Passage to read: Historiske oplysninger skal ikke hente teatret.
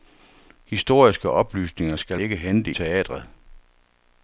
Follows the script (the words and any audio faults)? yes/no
yes